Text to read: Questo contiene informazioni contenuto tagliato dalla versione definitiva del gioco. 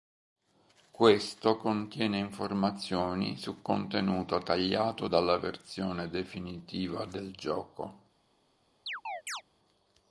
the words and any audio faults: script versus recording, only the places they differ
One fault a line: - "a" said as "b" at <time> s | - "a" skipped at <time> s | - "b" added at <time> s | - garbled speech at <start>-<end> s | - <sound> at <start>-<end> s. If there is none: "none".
- "su" added at 3.4 s
- chirp at 8.9-9.4 s